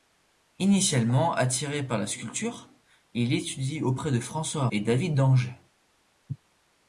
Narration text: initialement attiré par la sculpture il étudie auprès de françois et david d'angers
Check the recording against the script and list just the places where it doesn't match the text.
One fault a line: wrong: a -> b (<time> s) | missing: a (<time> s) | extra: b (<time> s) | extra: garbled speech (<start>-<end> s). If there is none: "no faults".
no faults